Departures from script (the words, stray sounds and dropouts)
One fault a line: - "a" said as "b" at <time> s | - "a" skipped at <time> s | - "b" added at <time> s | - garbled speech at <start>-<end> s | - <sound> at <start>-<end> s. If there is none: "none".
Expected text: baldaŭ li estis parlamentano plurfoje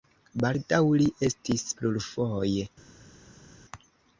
- "parlamentano" skipped at 1.6 s